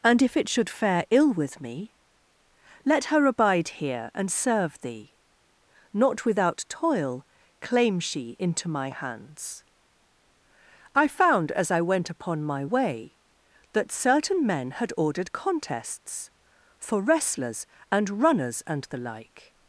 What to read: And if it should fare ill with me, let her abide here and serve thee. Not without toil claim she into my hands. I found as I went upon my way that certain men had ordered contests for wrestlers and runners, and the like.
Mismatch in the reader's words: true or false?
false